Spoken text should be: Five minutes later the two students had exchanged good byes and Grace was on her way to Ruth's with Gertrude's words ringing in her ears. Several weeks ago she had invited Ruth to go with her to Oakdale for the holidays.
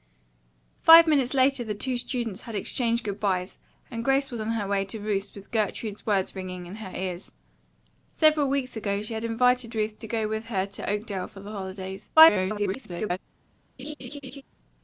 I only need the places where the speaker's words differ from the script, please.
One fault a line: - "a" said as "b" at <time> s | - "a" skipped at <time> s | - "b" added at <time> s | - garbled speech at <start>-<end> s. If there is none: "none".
- garbled speech at 12.2-13.2 s